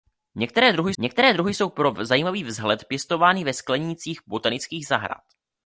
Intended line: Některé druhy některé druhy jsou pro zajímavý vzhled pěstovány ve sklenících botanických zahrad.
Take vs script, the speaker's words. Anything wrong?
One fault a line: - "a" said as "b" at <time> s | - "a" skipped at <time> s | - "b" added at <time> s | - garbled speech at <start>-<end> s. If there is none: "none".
none